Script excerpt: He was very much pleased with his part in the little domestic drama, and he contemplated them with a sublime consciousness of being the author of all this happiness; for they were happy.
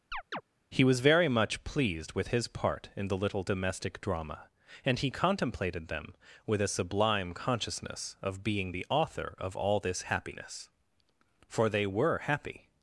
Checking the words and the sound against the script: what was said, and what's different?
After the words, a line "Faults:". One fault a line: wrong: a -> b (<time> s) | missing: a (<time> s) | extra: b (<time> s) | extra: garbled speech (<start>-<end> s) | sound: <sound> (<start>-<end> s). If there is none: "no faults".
He was very much pleased with his part in the little domestic drama, and he contemplated them with a sublime consciousness of being the author of all this happiness; for they were happy.
Faults:
sound: chirp (0.1-0.4 s)